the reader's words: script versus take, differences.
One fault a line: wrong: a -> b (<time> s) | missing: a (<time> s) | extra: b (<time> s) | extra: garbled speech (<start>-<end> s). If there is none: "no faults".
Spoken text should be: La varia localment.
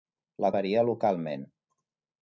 no faults